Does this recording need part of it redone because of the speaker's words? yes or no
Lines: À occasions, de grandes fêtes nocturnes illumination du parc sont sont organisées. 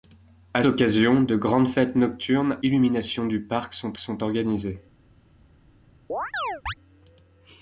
no